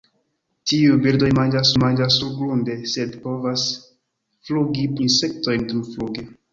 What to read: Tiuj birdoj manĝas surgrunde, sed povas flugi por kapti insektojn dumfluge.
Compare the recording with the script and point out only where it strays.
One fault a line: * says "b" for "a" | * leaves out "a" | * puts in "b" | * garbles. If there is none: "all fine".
* puts in "manĝas"
* leaves out "por kapti"